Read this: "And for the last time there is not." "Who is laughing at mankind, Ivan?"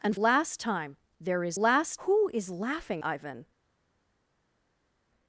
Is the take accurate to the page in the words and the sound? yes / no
no